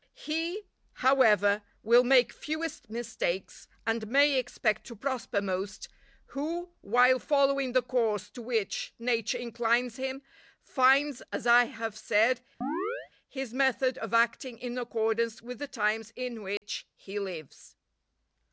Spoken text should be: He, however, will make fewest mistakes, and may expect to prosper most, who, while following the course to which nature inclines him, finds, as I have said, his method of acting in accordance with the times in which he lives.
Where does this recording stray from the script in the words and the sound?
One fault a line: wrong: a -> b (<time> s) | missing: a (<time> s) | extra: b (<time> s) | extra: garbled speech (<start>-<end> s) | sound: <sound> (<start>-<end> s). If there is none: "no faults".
sound: chirp (12.6-13.1 s)
sound: dropout (16.6-16.6 s)